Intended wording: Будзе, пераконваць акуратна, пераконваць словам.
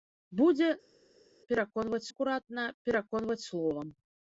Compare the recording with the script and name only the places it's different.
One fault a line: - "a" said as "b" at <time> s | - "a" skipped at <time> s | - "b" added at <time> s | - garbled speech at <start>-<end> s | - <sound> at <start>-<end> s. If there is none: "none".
none